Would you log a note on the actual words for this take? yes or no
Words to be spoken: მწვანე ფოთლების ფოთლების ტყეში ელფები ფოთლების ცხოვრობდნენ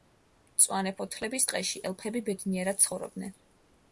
yes